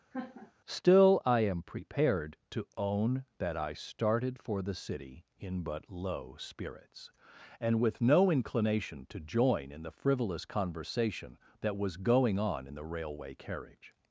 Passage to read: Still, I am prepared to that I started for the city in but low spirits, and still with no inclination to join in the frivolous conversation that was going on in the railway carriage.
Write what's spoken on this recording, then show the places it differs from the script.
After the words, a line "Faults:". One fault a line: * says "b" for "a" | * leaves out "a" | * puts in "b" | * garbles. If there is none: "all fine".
Still, I am prepared to own that I started for the city in but low spirits, and with no inclination to join in the frivolous conversation that was going on in the railway carriage.
Faults:
* puts in "own"
* leaves out "still"